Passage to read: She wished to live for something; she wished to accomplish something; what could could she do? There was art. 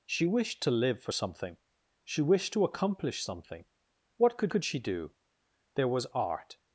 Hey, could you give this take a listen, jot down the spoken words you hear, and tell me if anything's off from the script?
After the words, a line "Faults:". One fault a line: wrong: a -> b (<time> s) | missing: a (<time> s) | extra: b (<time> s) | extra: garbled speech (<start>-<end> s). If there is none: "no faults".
She wished to live for something; she wished to accomplish something; what could could she do? There was art.
Faults:
no faults